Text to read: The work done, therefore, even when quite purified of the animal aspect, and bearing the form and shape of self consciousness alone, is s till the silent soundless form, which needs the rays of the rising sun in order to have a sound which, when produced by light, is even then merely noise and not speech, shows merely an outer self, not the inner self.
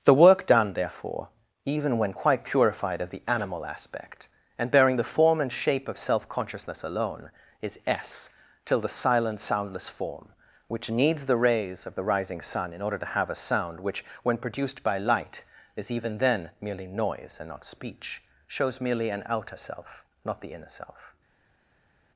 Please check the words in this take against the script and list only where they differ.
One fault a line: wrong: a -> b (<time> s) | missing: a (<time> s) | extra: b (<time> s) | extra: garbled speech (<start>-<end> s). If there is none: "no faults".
no faults